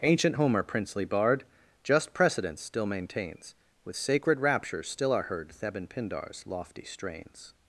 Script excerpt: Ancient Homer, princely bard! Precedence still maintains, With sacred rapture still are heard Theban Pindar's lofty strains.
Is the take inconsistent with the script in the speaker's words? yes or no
yes